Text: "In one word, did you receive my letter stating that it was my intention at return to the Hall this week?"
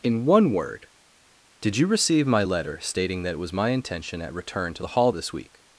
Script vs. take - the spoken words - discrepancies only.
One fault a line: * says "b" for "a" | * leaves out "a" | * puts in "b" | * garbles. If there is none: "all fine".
all fine